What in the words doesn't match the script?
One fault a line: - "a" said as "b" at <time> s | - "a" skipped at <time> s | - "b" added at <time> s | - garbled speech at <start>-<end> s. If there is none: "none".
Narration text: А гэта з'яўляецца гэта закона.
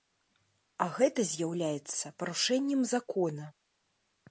- "гэта" said as "парушэннем" at 2.2 s